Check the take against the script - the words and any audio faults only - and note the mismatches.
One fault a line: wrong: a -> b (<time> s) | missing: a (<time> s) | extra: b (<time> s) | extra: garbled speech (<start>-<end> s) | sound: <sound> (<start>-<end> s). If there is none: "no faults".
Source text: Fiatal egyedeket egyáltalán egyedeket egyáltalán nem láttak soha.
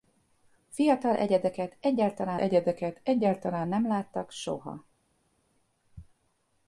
no faults